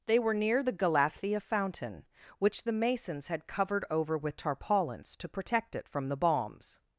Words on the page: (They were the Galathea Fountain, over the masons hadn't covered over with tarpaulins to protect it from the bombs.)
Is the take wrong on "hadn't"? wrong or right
wrong